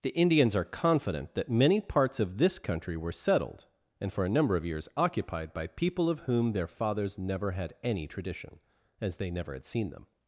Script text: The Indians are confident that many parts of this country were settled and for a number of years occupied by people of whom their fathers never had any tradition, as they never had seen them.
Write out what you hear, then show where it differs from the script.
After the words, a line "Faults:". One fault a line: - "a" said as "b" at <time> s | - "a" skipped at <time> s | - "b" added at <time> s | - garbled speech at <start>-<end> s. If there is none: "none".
The Indians are confident that many parts of this country were settled and for a number of years occupied by people of whom their fathers never had any tradition, as they never had seen them.
Faults:
none